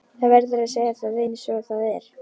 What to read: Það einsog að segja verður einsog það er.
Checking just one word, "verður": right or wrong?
wrong